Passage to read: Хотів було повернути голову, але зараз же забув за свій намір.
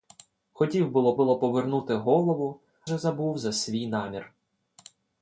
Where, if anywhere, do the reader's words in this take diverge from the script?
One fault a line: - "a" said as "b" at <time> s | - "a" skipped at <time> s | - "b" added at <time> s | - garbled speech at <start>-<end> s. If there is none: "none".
- "було" added at 1.1 s
- "але зараз" skipped at 2.6 s